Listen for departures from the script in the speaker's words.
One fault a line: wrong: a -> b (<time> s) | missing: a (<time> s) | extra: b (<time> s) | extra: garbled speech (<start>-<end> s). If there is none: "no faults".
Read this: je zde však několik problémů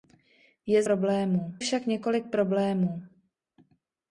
wrong: zde -> problémů (0.8 s)